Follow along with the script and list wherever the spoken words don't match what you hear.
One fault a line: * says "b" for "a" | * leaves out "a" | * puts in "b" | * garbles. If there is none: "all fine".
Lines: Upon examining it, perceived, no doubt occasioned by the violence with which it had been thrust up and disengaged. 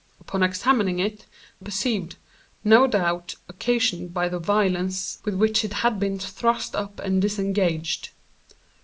all fine